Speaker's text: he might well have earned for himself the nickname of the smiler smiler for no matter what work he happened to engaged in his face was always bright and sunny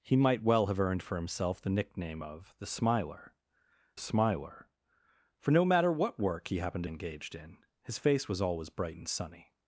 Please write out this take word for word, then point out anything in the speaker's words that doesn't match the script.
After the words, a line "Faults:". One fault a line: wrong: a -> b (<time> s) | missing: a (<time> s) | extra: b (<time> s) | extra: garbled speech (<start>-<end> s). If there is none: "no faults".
he might well have earned for himself the nickname of the smiler smiler for no matter what work he happened to engaged in his face was always bright and sunny
Faults:
no faults